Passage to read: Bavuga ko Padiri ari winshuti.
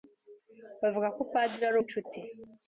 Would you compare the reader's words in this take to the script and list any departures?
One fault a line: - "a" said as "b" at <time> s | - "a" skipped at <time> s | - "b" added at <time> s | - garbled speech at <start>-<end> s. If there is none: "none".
none